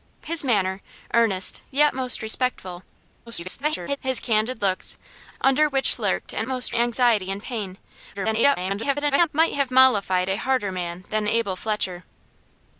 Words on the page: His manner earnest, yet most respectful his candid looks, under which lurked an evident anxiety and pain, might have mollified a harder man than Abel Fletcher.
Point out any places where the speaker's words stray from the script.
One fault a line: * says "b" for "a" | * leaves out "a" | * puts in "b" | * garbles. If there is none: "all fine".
* garbles
* says "most" for "evident"
* garbles